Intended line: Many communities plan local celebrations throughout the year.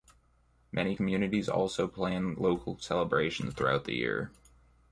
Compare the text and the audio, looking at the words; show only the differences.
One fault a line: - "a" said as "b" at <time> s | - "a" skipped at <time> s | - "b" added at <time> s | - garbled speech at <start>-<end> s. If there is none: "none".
- "also" added at 1.5 s